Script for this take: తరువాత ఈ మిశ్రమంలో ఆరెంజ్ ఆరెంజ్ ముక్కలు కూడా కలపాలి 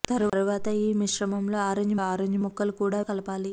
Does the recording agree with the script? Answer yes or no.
yes